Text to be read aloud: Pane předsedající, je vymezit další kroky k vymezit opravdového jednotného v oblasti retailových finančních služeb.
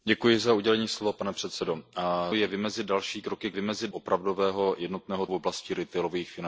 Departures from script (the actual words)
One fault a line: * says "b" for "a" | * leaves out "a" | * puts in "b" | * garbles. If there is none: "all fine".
all fine